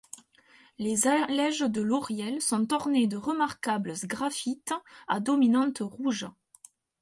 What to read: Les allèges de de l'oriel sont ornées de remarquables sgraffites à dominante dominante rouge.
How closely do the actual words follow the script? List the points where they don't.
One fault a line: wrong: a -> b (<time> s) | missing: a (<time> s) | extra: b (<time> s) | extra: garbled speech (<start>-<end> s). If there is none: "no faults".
missing: de (1.8 s)
missing: dominante (5.8 s)